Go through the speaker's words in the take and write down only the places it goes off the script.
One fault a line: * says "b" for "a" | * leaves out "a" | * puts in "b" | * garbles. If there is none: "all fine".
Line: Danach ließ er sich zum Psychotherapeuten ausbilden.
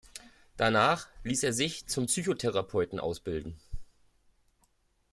all fine